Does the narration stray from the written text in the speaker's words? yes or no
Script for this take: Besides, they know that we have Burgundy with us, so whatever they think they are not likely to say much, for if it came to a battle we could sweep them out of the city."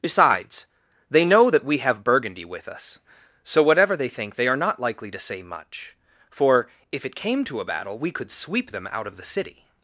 no